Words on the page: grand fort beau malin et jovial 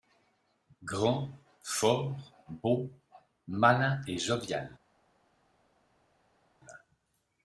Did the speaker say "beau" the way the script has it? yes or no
yes